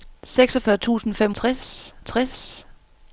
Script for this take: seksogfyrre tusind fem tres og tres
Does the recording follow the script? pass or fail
pass